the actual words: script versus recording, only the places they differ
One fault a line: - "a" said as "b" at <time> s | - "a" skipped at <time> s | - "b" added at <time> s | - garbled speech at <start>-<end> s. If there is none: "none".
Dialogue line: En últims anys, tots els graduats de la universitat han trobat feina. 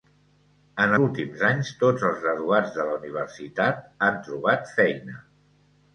none